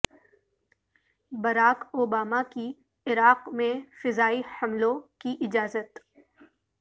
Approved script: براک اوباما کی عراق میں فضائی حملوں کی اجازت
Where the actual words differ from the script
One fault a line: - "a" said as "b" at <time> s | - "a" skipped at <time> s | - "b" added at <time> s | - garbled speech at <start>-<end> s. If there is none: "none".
none